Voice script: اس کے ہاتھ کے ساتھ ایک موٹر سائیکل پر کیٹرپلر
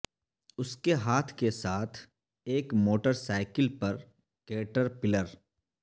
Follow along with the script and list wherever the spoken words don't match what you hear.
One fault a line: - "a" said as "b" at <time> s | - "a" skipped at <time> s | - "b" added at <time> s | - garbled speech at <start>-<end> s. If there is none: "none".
none